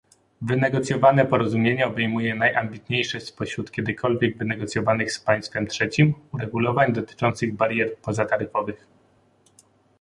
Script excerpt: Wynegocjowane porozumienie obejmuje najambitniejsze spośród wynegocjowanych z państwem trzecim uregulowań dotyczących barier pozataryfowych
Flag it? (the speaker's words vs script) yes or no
yes